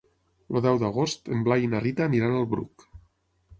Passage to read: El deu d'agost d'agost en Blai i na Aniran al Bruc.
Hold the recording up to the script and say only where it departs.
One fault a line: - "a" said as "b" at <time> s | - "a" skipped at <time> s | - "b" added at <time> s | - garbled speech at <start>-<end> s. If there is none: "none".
- "d'agost" skipped at 1.3 s
- "Rita" added at 1.8 s